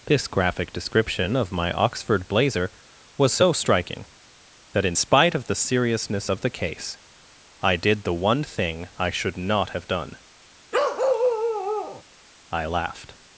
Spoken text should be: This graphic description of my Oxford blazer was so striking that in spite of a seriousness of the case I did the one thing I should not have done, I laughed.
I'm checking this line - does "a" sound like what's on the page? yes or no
no